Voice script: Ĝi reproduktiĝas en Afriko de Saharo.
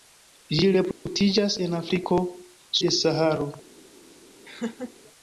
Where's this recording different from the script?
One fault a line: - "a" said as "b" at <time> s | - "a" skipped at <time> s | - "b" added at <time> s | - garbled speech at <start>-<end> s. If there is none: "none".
none